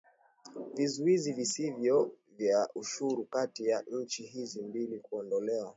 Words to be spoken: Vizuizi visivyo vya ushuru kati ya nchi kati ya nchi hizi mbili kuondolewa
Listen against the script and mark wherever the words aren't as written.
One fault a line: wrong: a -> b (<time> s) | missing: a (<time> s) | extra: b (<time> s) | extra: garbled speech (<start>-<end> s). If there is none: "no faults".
missing: kati ya nchi (4.2 s)